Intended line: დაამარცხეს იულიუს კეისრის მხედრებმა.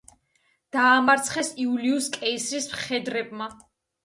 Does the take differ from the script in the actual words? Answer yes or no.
no